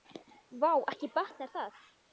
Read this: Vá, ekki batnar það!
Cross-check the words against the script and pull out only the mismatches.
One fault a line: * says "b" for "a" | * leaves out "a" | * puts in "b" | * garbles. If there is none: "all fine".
all fine